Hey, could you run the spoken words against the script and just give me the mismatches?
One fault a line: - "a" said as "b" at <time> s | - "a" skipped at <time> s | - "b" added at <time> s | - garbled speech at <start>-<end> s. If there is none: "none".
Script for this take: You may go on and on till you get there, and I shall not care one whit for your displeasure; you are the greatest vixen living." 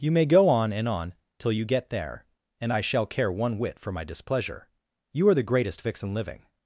- "not" skipped at 3.0 s
- "your" said as "my" at 3.9 s